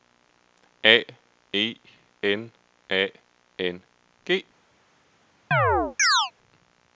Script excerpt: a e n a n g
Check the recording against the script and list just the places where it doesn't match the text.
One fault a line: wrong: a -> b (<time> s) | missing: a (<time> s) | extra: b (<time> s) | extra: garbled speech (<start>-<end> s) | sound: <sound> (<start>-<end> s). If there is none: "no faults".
sound: chirp (5.5-6.3 s)